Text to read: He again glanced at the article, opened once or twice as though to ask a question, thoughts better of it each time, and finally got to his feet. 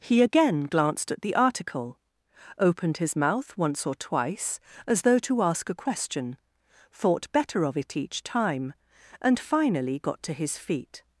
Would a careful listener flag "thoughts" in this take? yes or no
yes